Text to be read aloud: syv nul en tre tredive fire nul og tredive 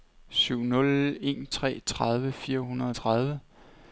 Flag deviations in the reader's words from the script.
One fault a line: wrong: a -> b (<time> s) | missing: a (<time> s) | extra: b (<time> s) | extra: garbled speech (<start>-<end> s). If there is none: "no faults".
wrong: nul -> hundrede (2.6 s)